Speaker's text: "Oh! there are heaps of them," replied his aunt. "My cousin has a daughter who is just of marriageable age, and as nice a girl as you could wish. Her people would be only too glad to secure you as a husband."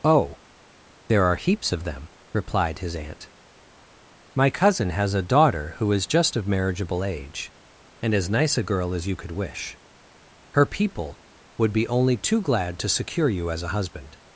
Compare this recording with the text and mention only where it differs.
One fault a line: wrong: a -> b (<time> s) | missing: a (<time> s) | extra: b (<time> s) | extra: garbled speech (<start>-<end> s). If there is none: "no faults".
no faults